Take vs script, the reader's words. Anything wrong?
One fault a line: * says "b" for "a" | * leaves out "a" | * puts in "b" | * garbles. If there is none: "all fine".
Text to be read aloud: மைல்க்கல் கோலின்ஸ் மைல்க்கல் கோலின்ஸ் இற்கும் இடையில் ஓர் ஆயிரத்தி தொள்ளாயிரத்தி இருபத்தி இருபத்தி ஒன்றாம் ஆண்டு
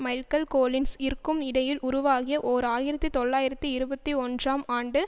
* leaves out "மைல்க்கல் கோலின்ஸ்"
* puts in "உருவாகிய"
* leaves out "இருபத்தி"